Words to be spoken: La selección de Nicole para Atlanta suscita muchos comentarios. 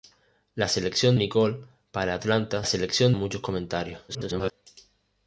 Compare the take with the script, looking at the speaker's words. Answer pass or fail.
fail